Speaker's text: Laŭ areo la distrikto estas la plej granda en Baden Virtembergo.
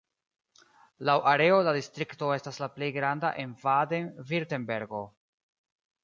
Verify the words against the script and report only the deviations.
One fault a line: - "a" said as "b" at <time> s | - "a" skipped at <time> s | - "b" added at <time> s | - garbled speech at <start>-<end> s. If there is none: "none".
none